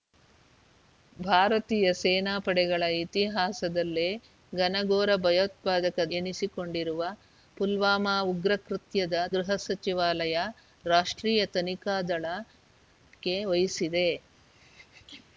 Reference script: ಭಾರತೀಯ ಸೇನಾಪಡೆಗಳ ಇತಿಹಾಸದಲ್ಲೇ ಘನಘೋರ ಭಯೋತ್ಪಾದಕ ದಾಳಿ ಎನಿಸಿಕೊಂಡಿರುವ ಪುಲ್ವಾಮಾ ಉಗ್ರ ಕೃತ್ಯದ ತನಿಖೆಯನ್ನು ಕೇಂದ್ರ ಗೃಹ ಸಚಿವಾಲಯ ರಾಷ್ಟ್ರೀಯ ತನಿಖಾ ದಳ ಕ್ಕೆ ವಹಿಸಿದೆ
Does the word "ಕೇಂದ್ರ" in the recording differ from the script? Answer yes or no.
yes